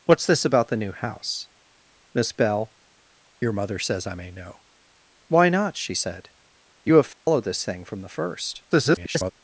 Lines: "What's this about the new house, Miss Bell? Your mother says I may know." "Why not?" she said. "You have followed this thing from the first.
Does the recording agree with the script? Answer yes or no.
no